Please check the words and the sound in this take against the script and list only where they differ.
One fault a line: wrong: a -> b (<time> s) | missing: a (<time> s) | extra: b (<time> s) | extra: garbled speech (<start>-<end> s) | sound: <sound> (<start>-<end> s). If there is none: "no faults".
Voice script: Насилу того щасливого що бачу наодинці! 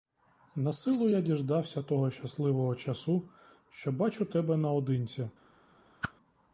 extra: я діждався (1.1 s)
extra: часу (2.7 s)
extra: тебе (4.2 s)
sound: whoosh (6.0-6.1 s)